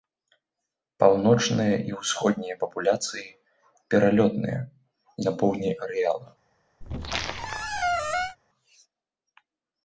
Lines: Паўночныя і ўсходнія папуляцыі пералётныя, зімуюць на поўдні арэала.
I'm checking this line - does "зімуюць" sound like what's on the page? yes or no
no